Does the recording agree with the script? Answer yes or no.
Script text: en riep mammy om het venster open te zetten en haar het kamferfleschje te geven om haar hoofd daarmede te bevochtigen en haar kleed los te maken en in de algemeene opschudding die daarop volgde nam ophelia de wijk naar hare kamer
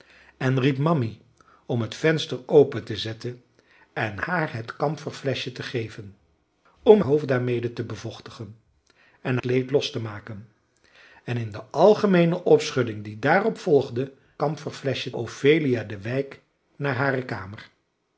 no